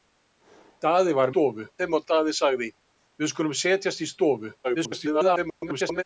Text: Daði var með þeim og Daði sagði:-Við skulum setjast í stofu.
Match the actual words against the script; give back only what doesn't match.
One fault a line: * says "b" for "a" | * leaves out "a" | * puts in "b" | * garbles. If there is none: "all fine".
* says "stofu" for "með"
* garbles